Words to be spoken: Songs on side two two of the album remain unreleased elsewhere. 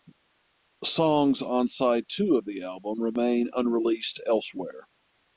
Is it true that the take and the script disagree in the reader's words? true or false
true